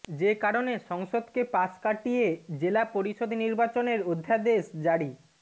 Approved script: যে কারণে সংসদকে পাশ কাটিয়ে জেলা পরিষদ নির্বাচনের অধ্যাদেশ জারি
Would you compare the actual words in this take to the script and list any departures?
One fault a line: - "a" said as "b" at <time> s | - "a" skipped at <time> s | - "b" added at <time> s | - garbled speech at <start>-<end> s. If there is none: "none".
none